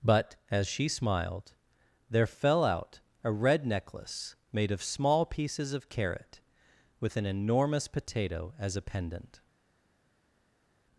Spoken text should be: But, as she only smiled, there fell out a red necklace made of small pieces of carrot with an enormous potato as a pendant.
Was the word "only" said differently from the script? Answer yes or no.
yes